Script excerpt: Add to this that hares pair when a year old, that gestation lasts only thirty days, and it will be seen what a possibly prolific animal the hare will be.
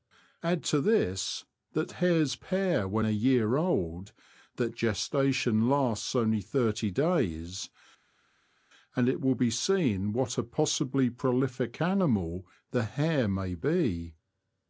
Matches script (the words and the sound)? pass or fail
fail